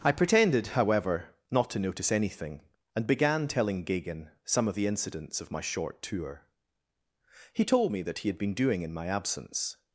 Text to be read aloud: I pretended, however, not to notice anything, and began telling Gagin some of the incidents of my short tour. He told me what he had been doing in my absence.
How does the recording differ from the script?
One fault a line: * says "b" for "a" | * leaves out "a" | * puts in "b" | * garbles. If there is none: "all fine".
* says "that" for "what"